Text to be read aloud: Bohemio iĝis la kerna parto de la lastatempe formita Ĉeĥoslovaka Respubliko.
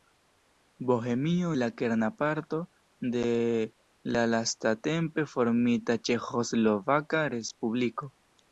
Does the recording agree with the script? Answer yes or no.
no